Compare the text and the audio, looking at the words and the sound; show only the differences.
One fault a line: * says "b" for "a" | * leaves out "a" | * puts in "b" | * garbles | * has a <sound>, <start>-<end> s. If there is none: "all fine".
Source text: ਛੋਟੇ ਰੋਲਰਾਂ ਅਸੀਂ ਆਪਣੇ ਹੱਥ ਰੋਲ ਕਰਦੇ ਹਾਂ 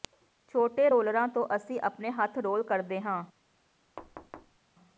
* puts in "ਤੋਂ"
* has a thud, 4.0-4.6 s